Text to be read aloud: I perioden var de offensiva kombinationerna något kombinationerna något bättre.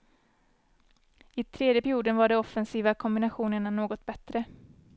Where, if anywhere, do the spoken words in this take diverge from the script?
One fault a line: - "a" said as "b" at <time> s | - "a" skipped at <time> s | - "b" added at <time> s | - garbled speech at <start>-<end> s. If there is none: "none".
- "tredje" added at 1.4 s
- "kombinationerna något" skipped at 4.0 s